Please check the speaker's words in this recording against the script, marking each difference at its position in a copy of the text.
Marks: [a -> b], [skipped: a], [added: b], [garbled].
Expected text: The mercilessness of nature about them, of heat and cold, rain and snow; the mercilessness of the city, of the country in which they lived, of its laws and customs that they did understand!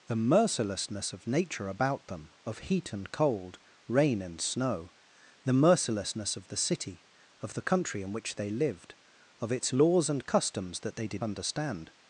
The mercilessness of nature about them, of heat and cold, rain and snow; the mercilessness of the city, of the country in which they lived, of its laws and customs that they did understand!